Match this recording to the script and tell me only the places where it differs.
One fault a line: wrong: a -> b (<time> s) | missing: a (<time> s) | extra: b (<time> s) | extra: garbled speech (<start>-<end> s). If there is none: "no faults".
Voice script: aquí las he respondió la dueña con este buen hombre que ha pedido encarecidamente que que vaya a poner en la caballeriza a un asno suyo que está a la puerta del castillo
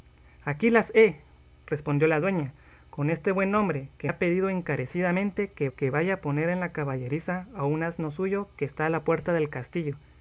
no faults